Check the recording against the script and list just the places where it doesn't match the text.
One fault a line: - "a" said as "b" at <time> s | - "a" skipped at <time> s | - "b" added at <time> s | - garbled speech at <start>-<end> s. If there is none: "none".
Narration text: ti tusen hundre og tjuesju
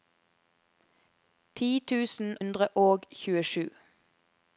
none